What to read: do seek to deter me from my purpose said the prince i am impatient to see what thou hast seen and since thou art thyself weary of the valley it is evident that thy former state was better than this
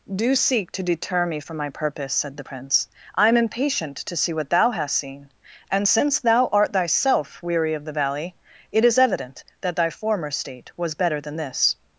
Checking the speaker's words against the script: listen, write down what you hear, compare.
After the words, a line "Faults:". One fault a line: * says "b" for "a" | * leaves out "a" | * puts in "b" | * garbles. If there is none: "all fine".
do seek to deter me from my purpose said the prince i am impatient to see what thou hast seen and since thou art thyself weary of the valley it is evident that thy former state was better than this
Faults:
all fine